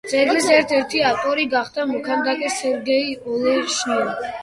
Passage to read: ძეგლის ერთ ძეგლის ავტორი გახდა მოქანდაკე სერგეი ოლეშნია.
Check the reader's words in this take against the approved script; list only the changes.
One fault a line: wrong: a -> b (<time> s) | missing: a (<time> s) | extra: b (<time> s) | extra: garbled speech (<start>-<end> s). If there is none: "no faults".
wrong: ძეგლის -> ერთი (0.8 s)